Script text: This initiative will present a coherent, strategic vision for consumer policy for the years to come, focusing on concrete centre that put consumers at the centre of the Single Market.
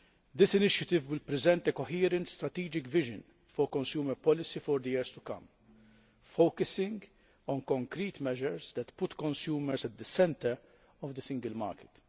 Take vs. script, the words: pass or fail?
fail